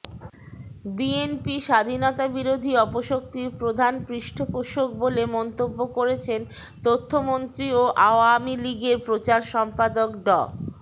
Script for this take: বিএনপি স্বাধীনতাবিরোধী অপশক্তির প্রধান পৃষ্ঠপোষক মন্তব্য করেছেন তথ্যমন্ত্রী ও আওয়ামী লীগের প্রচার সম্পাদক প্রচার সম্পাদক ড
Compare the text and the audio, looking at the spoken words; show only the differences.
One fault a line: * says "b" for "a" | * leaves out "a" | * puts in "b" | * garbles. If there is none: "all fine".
* puts in "বলে"
* leaves out "প্রচার সম্পাদক"